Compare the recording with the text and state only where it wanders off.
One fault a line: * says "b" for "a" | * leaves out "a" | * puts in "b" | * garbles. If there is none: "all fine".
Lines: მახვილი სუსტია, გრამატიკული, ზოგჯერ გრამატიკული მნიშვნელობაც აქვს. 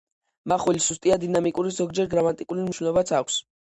* says "დინამიკური" for "გრამატიკული"